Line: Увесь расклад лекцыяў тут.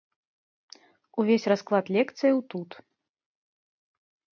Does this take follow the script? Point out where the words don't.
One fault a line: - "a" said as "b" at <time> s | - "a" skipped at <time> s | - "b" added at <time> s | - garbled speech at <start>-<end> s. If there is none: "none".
none